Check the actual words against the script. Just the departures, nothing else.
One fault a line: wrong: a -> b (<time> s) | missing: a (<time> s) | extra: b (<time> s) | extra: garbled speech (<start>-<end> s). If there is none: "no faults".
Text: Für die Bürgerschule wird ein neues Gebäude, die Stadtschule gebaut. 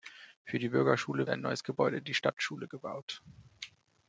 missing: wird (1.3 s)